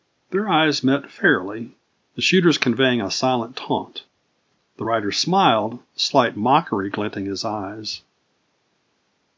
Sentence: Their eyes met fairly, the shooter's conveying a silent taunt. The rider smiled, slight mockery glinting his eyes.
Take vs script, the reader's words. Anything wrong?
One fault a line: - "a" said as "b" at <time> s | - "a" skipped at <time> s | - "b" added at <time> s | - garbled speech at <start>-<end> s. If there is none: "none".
none